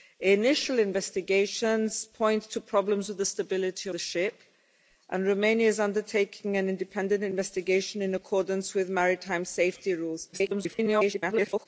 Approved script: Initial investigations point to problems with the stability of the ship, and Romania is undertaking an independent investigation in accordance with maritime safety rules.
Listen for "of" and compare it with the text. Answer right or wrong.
wrong